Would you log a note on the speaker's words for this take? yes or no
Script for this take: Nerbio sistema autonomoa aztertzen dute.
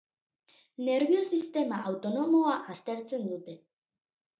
no